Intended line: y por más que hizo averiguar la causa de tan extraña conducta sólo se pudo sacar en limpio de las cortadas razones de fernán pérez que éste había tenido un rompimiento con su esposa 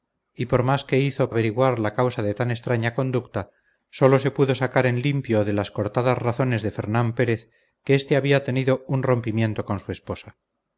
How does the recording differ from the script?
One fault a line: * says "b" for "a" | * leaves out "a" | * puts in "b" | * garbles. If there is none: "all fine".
all fine